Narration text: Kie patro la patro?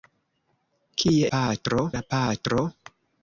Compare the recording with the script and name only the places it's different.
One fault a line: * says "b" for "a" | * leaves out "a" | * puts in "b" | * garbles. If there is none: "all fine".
all fine